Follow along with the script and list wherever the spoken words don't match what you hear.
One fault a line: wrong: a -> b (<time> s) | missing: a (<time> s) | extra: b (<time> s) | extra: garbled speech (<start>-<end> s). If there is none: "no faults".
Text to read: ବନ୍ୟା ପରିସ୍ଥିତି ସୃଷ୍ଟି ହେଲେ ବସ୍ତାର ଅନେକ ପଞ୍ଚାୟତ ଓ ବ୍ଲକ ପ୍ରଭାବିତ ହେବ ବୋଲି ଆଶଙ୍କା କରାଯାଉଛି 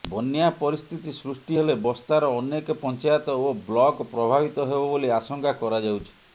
no faults